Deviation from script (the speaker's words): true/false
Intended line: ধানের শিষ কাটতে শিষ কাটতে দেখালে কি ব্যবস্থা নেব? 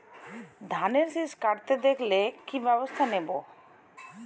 true